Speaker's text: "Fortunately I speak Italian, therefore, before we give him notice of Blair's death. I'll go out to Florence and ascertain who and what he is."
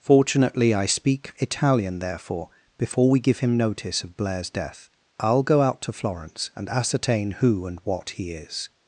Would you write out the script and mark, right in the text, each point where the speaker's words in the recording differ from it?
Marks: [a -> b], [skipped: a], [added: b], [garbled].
"Fortunately I speak Italian, therefore, before we give him notice of Blair's death. I'll go out to Florence and ascertain who and what he is."